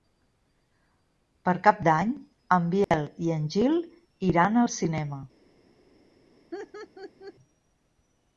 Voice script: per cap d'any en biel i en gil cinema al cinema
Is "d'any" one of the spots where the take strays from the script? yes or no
no